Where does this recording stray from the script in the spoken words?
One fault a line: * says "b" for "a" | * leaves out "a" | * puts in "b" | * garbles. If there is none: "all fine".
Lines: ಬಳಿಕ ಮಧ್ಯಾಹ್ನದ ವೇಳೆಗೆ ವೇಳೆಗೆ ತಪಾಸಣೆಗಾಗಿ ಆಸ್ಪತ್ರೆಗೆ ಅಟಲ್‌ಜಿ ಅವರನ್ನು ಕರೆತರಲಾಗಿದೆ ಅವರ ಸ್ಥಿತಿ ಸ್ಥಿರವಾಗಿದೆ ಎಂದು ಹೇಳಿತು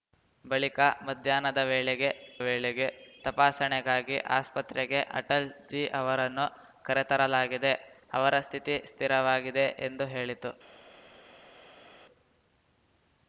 all fine